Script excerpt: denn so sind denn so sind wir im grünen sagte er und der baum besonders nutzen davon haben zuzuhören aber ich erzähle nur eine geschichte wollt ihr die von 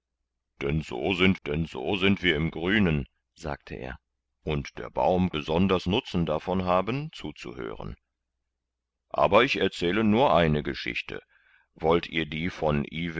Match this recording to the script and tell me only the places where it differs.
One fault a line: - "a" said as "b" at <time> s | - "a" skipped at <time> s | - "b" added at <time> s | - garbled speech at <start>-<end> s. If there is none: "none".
none